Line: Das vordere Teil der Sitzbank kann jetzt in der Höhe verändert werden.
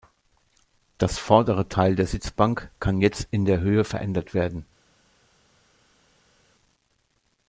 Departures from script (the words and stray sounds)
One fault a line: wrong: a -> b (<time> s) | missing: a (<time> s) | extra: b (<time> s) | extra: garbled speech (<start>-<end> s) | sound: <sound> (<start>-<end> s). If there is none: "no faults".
no faults